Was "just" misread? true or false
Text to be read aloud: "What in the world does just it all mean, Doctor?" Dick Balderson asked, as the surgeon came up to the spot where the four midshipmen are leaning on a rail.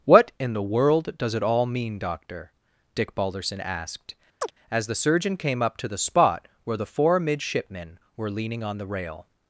true